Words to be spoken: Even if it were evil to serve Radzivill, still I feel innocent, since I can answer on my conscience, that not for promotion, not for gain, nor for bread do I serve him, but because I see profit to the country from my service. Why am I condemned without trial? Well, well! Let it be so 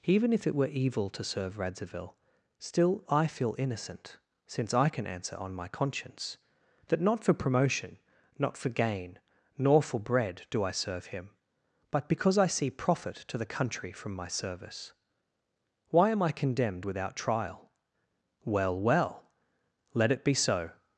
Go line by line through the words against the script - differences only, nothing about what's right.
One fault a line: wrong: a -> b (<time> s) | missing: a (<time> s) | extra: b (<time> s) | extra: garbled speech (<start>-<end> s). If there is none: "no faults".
no faults